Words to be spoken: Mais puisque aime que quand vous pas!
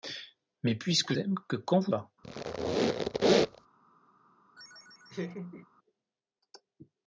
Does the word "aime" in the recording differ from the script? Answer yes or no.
no